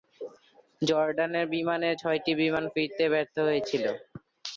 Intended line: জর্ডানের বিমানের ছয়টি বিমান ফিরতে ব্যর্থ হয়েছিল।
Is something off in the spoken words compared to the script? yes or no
no